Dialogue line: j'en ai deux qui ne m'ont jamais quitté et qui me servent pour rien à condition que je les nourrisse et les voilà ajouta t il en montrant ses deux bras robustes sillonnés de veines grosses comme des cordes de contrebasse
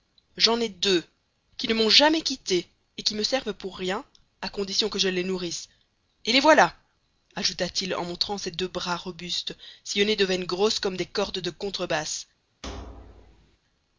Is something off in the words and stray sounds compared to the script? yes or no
yes